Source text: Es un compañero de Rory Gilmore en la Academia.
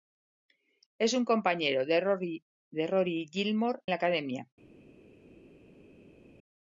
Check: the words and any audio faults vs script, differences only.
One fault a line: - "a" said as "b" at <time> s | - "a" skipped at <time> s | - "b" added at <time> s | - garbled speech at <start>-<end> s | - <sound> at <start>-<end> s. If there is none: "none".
- "en" skipped at 3.8 s